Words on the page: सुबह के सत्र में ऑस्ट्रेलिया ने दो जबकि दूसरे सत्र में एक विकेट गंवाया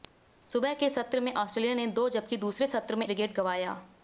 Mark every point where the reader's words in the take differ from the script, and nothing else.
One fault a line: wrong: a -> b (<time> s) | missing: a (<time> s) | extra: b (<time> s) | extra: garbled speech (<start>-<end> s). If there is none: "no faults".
missing: एक (3.1 s)